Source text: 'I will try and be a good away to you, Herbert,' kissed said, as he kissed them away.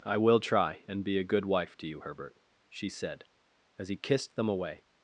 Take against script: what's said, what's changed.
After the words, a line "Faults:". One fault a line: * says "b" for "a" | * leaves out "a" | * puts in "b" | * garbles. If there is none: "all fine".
'I will try and be a good wife to you, Herbert,' she said, as he kissed them away.
Faults:
* says "wife" for "away"
* says "she" for "kissed"